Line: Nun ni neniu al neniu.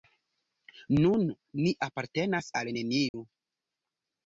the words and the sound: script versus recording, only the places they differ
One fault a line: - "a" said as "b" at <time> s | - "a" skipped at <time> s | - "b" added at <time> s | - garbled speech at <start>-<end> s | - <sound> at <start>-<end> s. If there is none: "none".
- "neniu" said as "apartenas" at 1.9 s
- dropout at 3.1-3.1 s